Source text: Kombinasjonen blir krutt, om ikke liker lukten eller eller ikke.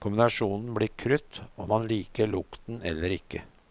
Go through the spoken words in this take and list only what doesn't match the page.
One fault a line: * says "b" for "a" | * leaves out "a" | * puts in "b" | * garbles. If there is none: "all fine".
* says "man" for "ikke"
* leaves out "eller"